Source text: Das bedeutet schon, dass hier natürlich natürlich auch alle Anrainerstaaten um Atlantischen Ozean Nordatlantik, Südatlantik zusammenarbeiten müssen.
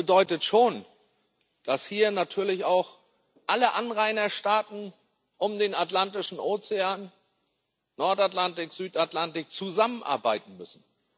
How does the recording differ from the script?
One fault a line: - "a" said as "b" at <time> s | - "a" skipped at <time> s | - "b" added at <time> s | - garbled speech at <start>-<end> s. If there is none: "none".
- "natürlich" skipped at 2.6 s
- "den" added at 5.6 s